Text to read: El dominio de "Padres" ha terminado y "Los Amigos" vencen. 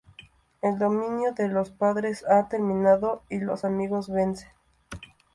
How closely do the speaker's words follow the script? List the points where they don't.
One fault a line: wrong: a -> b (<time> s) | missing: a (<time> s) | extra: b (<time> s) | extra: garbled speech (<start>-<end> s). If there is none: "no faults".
extra: Los (1.5 s)